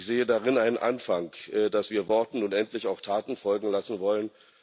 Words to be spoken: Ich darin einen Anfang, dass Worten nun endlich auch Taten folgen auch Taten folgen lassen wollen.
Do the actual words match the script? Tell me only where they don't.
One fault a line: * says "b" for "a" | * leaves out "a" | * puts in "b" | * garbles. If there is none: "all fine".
* puts in "sehe"
* puts in "wir"
* leaves out "auch Taten folgen"